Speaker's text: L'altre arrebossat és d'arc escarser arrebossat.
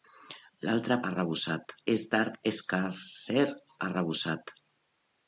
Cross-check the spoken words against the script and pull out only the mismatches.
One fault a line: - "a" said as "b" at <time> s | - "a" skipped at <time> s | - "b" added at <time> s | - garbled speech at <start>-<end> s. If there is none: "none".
none